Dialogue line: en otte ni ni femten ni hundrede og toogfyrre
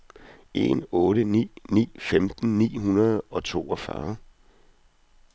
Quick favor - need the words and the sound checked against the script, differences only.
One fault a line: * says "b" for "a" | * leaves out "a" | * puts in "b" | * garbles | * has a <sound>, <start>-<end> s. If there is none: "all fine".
all fine